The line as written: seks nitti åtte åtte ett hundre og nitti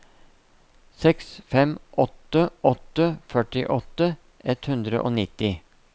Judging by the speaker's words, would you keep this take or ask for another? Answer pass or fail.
fail